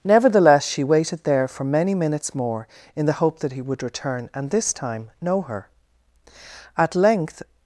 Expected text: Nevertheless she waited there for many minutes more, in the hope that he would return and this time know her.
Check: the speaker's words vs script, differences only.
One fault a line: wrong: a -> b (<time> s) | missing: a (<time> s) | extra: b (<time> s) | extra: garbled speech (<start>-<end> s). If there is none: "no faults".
extra: At length (6.8 s)